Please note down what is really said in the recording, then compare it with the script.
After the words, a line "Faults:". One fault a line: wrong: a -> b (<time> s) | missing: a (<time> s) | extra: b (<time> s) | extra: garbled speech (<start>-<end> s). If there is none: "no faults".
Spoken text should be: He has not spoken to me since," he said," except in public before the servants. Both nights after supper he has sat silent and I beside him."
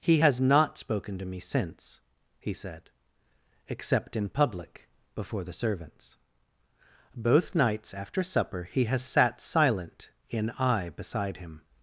He has not spoken to me since," he said," except in public before the servants. Both nights after supper he has sat silent in I beside him."
Faults:
wrong: and -> in (10.3 s)